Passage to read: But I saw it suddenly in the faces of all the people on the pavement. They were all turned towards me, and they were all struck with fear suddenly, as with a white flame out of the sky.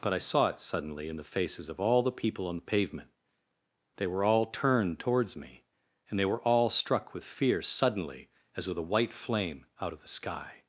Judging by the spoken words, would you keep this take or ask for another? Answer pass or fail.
pass